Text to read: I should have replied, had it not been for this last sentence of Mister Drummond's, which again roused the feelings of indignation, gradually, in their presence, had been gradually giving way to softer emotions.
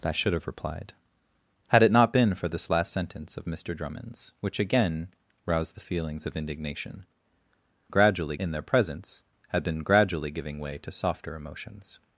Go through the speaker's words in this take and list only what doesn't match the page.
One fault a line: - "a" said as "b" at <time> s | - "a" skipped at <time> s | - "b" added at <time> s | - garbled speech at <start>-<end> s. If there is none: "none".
none